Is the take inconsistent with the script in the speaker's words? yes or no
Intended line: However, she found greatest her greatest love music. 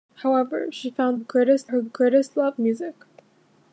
no